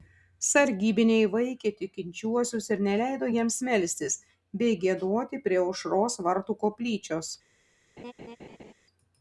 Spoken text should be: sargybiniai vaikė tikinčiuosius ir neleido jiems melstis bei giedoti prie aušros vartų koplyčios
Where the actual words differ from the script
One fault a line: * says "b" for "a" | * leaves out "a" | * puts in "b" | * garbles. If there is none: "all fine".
all fine